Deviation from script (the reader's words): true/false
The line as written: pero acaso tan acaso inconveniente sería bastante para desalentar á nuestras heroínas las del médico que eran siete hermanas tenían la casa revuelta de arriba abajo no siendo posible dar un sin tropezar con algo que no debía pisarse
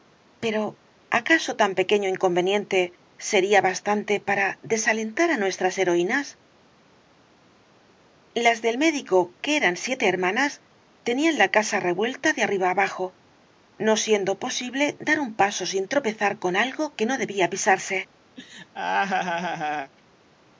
true